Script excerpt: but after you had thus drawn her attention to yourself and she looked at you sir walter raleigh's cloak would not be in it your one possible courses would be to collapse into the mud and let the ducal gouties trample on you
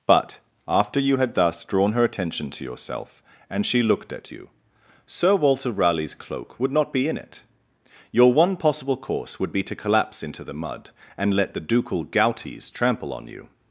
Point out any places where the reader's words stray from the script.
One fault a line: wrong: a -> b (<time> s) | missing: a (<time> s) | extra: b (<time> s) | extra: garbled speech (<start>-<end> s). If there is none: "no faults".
wrong: courses -> course (9.0 s)